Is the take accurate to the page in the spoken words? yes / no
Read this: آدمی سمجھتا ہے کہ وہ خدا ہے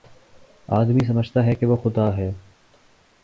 yes